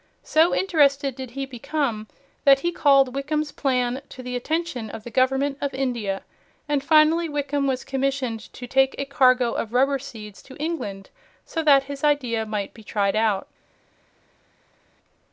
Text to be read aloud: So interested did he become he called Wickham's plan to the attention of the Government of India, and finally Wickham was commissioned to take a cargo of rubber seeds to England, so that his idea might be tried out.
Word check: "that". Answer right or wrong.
right